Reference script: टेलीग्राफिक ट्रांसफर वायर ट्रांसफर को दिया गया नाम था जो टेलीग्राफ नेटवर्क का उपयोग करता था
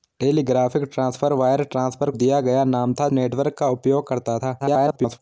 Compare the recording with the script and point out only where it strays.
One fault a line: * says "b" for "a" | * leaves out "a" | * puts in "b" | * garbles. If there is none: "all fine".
* leaves out "को"
* leaves out "जो टेलीग्राफ"
* garbles